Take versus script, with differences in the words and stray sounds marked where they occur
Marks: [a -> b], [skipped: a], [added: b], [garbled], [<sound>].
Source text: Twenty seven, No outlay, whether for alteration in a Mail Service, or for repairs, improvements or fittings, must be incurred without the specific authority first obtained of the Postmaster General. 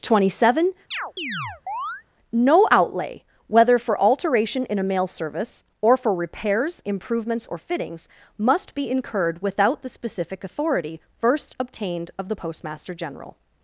Twenty seven, [chirp] No outlay, whether for alteration in a Mail Service, or for repairs, improvements or fittings, must be incurred without the specific authority first obtained of the Postmaster General.